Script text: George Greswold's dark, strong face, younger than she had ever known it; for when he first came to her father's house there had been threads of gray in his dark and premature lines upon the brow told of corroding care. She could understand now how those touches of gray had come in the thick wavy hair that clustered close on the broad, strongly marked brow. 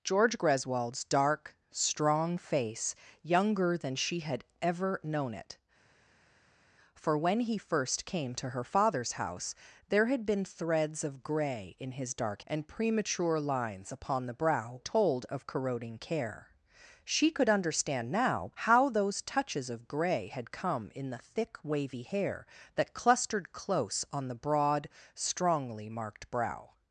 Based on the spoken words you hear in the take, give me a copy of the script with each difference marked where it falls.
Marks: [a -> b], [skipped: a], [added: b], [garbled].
George Greswold's dark, strong face, younger than she had ever known it; for when he first came to her father's house there had been threads of gray in his dark and premature lines upon the brow told of corroding care. She could understand now how those touches of gray had come in the thick wavy hair that clustered close on the broad, strongly marked brow.